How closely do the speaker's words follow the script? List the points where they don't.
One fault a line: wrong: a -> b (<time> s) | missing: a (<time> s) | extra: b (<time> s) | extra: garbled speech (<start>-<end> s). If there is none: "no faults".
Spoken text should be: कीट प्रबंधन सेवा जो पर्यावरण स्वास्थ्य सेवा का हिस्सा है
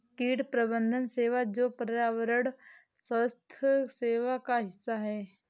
no faults